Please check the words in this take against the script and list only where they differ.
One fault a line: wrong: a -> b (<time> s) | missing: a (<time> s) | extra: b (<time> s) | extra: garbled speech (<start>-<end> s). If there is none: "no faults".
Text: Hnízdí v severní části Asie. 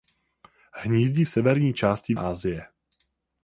no faults